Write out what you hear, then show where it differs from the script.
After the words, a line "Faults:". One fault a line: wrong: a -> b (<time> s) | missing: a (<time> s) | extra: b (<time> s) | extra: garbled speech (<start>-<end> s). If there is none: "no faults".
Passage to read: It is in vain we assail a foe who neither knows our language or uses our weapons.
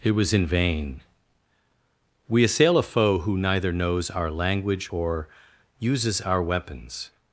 It was in vain we assail a foe who neither knows our language or uses our weapons.
Faults:
wrong: is -> was (0.1 s)